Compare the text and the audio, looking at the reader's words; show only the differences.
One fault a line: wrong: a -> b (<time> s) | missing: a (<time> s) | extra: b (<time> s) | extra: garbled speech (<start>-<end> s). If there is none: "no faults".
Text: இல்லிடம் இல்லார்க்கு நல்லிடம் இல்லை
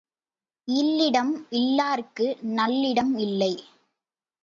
no faults